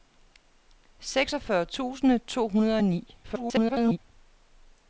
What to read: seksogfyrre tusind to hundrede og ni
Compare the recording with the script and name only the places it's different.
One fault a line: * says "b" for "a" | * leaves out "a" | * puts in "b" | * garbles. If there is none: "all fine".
* garbles